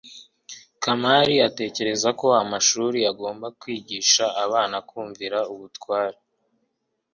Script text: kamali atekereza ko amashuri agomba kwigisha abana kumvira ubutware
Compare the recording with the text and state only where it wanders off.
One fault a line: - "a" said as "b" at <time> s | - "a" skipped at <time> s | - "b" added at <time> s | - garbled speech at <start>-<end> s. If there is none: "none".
none